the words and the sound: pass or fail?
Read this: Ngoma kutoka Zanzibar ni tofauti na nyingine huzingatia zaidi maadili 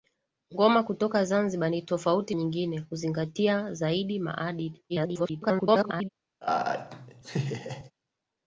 fail